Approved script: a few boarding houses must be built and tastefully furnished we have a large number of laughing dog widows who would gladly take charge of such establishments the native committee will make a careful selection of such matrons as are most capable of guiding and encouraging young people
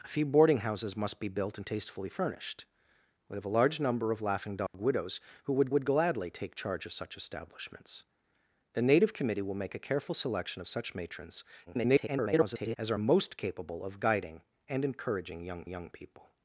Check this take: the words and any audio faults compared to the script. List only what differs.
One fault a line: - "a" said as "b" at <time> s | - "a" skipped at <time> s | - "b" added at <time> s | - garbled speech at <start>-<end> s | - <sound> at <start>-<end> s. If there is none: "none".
- dropout at 4.7-4.7 s
- "would" added at 5.7 s
- garbled speech at 11.7-12.8 s
- "young" added at 15.7 s